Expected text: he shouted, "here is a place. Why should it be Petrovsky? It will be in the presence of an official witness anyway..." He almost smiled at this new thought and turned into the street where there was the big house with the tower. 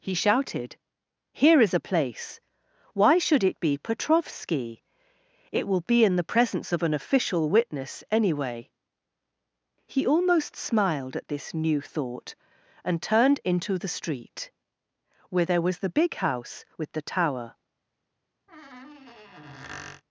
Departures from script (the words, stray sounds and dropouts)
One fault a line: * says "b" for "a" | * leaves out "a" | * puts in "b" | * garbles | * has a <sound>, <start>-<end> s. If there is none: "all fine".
* has a squeak, 18.5-20.0 s